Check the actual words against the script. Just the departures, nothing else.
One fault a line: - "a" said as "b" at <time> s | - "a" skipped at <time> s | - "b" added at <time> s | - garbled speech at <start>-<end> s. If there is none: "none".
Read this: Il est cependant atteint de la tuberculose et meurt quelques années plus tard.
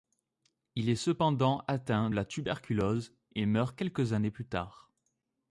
- "de" skipped at 2.1 s